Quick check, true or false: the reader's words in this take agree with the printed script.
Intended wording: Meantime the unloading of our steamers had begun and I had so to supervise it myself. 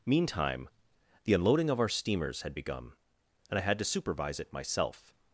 false